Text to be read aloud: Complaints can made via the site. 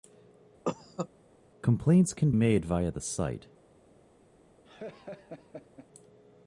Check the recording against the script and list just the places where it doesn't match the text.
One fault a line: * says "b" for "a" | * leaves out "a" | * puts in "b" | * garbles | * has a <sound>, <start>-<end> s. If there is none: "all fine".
* has a cough, 0.6-1.1 s
* has a laugh, 4.6-5.9 s